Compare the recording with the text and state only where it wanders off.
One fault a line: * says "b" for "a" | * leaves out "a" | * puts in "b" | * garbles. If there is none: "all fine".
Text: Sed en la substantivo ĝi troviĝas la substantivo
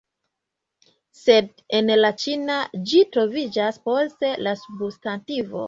* says "ĉina" for "substantivo"
* puts in "post"